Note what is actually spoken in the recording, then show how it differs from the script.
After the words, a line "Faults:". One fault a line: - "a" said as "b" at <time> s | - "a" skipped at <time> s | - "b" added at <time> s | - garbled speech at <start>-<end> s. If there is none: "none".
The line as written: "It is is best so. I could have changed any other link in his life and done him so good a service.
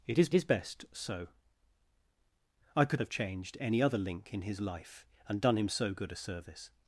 "It is is best so. I could have changed any other link in his life and done him so good a service.
Faults:
none